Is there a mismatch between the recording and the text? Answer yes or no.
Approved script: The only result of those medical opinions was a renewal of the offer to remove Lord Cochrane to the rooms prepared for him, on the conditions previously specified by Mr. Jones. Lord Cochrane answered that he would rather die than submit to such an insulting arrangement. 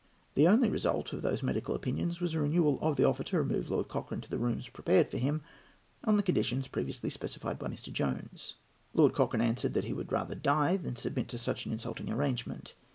no